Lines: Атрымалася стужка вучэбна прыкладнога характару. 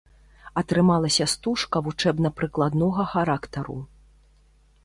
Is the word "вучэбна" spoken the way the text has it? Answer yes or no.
yes